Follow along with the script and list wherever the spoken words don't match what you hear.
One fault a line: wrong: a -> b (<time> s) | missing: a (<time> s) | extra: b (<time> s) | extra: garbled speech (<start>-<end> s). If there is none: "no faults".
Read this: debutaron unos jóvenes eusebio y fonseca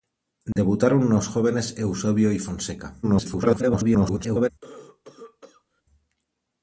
extra: garbled speech (3.0-4.5 s)